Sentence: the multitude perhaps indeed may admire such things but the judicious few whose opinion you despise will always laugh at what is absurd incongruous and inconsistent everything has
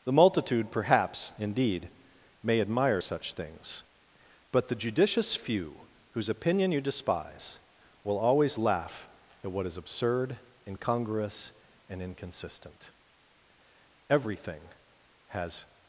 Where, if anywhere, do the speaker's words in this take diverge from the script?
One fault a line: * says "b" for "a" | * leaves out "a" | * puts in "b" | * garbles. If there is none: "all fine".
all fine